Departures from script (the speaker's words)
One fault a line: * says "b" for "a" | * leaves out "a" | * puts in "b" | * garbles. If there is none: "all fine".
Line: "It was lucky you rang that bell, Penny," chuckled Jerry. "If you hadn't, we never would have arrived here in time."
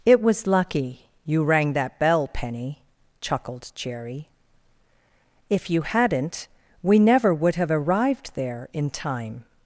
* says "there" for "here"